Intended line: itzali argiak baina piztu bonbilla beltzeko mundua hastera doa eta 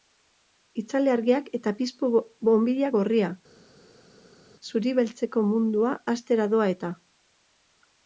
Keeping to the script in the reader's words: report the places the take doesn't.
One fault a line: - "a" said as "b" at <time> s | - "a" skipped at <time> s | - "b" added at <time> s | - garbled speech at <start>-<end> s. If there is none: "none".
- "baina" said as "eta" at 1.6 s
- "gorria zuri" added at 3.0 s